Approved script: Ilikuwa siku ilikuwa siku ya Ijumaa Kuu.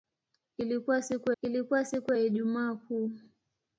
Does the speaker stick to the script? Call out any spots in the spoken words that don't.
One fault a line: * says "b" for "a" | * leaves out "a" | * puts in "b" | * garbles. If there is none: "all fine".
all fine